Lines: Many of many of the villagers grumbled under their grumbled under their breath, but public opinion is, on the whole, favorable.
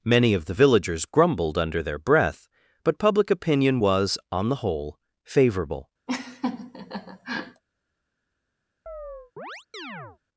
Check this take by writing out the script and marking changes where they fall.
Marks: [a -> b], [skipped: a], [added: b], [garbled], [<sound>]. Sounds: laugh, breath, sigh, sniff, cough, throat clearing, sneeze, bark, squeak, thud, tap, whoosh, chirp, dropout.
Many of [skipped: many of] the villagers grumbled under their [skipped: grumbled under their] breath, but public opinion [is, -> was] on the whole, favorable. [laugh] [chirp]